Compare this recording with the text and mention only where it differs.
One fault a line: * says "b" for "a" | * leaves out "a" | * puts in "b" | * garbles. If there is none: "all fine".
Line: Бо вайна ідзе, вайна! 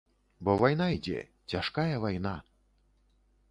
* puts in "цяжкая"